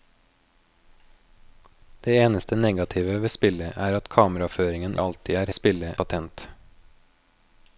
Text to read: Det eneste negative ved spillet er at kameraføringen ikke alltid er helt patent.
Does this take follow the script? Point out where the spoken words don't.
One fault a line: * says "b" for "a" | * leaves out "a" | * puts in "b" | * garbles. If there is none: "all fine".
* leaves out "ikke"
* says "spillet" for "helt"